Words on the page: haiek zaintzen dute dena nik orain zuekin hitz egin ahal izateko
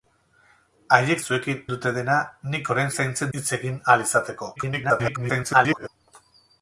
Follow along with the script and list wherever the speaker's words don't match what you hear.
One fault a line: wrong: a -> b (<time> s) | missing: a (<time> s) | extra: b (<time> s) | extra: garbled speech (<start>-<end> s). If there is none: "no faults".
wrong: zaintzen -> zuekin (1.2 s)
wrong: zuekin -> zaintzen (3.0 s)
extra: garbled speech (4.6-5.9 s)